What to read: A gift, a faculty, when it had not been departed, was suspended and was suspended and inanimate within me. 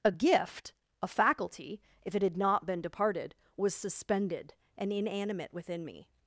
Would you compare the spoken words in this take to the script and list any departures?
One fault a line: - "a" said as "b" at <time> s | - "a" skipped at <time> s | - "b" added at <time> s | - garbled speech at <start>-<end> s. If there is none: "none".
- "when" said as "if" at 2.0 s
- "was suspended and" skipped at 4.9 s